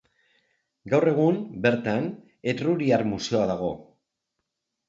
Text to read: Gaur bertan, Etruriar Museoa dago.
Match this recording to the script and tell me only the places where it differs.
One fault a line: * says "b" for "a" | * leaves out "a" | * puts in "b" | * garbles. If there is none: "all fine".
* puts in "egun"